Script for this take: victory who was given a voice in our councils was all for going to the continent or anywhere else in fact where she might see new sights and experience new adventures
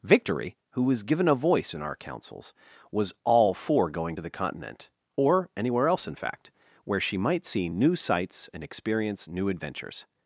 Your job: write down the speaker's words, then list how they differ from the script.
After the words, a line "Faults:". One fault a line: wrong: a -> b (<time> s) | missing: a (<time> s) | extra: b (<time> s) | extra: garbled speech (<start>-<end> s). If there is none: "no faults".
victory who was given a voice in our councils was all for going to the continent or anywhere else in fact where she might see new sights and experience new adventures
Faults:
no faults